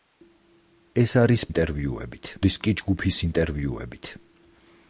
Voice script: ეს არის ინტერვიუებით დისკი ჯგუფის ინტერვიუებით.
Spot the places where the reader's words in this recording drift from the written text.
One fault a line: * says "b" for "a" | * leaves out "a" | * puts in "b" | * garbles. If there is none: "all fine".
all fine